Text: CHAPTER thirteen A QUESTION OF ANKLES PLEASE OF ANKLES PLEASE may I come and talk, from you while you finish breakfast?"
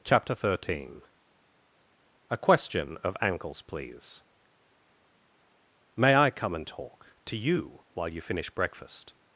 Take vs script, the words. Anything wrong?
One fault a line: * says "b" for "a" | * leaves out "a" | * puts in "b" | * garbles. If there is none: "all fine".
* leaves out "OF ANKLES PLEASE"
* says "to" for "from"